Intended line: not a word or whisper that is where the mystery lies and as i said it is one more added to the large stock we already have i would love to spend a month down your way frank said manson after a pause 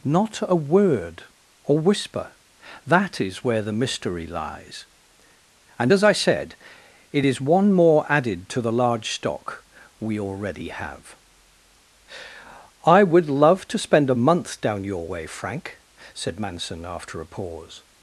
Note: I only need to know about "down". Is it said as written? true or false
true